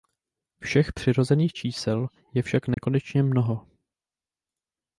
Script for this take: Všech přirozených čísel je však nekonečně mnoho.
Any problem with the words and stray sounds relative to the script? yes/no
yes